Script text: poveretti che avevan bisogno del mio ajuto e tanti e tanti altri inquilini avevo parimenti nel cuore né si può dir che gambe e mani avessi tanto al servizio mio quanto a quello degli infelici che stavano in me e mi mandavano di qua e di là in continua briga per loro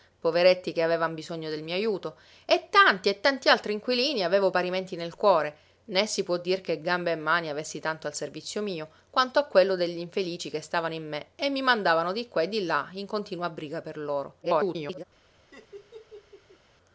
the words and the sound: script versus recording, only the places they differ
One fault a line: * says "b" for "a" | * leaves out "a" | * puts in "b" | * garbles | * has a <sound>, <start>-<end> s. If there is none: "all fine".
* garbles
* has a laugh, 15.5-16.6 s